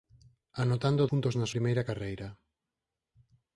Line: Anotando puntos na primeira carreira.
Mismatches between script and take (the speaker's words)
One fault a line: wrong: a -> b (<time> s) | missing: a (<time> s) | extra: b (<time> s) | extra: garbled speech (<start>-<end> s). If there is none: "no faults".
no faults